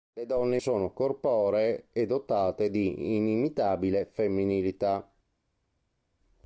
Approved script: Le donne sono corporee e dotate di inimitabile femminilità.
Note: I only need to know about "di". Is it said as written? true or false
true